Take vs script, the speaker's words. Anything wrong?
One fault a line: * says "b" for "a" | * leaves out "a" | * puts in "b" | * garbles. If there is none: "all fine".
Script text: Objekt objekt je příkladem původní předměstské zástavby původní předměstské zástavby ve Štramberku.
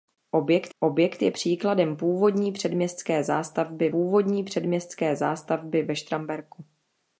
all fine